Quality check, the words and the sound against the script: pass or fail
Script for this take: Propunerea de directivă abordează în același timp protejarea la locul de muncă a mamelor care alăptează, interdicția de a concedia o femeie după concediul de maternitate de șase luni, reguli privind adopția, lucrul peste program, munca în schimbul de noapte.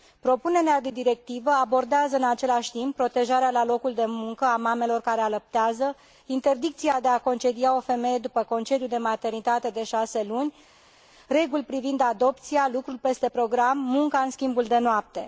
pass